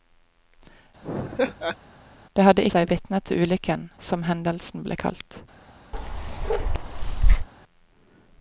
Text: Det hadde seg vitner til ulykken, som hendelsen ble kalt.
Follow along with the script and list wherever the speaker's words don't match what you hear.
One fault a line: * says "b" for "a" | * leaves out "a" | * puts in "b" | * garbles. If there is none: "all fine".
all fine